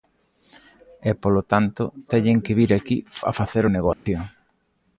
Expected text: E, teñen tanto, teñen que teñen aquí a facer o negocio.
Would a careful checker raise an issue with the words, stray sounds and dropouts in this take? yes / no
yes